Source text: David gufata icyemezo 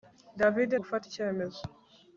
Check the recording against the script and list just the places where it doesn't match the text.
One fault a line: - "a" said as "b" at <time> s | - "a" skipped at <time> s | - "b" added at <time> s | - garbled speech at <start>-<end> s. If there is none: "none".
none